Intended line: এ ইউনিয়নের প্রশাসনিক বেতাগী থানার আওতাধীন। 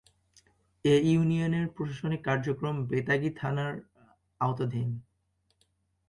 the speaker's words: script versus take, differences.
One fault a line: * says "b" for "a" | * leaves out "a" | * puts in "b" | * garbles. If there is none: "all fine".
* puts in "কার্যক্রম"